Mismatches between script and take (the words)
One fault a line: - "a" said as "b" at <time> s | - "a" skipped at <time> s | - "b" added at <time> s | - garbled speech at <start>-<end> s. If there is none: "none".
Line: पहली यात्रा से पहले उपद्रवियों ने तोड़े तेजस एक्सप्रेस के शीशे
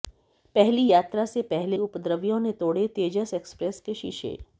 none